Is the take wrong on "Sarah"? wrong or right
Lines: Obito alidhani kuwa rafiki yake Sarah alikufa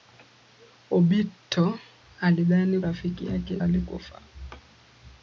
wrong